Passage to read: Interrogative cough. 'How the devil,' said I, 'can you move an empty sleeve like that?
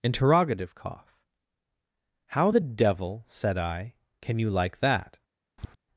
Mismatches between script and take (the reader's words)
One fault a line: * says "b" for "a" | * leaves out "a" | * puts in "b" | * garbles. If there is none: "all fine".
* leaves out "move an empty sleeve"